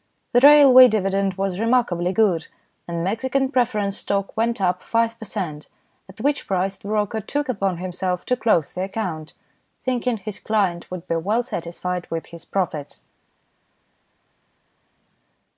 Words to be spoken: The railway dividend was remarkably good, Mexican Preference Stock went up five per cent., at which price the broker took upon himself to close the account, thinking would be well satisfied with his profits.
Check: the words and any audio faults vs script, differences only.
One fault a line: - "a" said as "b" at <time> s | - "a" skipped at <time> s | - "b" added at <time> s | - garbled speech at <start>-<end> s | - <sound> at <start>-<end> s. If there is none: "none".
- "and" added at 2.9 s
- "his client" added at 10.2 s